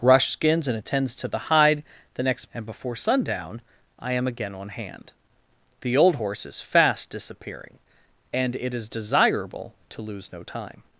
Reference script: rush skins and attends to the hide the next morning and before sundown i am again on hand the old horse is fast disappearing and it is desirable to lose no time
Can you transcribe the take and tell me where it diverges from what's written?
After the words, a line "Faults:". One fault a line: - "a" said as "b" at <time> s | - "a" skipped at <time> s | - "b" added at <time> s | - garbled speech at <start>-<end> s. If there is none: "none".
rush skins and attends to the hide the next and before sundown i am again on hand the old horse is fast disappearing and it is desirable to lose no time
Faults:
- "morning" skipped at 2.5 s